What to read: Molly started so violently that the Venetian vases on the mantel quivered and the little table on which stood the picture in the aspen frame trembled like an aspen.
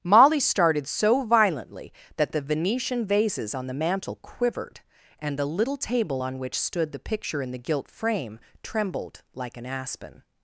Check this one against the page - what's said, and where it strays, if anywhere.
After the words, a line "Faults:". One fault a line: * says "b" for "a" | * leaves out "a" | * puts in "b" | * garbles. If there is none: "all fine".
Molly started so violently that the Venetian vases on the mantel quivered and the little table on which stood the picture in the gilt frame trembled like an aspen.
Faults:
* says "gilt" for "aspen"